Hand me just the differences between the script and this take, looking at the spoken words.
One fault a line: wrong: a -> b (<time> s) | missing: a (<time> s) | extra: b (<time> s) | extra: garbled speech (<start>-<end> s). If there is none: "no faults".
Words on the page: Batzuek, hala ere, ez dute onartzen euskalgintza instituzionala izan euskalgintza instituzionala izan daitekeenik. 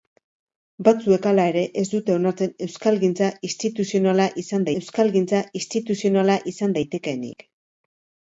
no faults